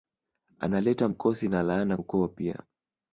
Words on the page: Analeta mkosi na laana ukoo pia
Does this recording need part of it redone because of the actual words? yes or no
no